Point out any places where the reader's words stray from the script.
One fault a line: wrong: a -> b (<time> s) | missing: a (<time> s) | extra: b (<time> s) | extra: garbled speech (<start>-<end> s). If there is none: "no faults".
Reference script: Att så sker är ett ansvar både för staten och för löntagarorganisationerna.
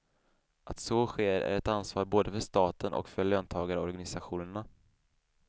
no faults